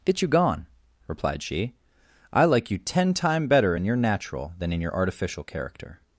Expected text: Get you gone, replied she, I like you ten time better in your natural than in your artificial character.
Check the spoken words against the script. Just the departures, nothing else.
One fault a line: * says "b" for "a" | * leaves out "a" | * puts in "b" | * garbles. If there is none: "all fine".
all fine